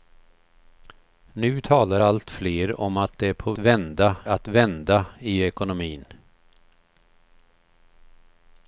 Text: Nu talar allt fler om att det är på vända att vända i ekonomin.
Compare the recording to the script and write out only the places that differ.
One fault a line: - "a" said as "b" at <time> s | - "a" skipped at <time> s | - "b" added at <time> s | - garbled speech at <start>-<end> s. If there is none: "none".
none